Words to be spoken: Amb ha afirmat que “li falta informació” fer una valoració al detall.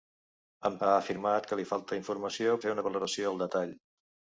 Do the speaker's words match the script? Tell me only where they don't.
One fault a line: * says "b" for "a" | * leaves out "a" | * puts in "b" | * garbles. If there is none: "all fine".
all fine